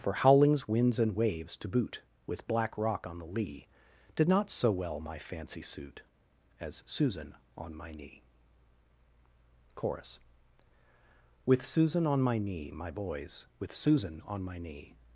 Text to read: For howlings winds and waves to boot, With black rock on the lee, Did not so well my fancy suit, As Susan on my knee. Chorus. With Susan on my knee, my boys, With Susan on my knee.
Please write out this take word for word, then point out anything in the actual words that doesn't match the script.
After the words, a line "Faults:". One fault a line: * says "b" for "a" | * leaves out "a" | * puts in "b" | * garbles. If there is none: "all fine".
For howlings winds and waves to boot, With black rock on the lee, Did not so well my fancy suit, As Susan on my knee. Chorus. With Susan on my knee, my boys, With Susan on my knee.
Faults:
all fine